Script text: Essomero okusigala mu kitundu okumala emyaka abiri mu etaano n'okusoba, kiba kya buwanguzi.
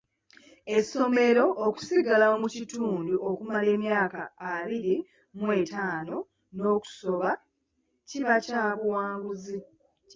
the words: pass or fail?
pass